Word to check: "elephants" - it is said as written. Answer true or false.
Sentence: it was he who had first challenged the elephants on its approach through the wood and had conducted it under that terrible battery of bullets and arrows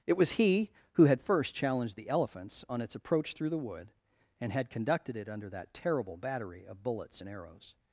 true